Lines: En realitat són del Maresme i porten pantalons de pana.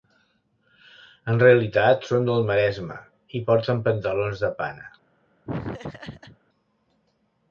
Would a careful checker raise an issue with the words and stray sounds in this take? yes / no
yes